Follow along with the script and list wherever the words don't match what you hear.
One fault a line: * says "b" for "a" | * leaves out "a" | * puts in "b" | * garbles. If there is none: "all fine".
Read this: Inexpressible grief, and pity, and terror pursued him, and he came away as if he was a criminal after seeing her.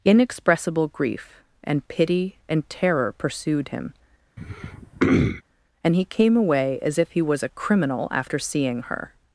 all fine